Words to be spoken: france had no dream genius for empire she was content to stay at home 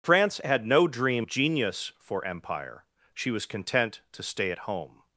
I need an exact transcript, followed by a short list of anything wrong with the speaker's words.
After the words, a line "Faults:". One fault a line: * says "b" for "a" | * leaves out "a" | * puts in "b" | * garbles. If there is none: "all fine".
france had no dream genius for empire she was content to stay at home
Faults:
all fine